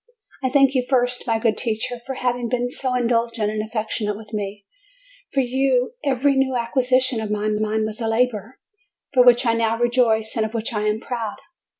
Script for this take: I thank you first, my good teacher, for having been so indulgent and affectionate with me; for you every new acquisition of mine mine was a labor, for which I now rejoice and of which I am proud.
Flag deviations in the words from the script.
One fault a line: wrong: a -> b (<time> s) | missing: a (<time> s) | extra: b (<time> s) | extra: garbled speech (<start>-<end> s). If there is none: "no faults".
no faults